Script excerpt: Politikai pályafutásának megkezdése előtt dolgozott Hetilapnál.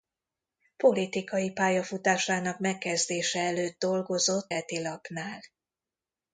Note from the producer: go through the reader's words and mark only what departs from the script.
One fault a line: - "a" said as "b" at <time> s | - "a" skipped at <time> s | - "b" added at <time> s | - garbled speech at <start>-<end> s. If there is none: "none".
none